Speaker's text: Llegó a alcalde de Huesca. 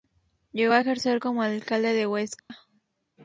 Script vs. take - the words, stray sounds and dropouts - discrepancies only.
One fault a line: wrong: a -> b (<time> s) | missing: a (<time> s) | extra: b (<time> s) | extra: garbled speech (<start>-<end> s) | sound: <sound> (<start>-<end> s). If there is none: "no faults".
extra: ejercer como (0.8 s)
sound: dropout (2.4-2.5 s)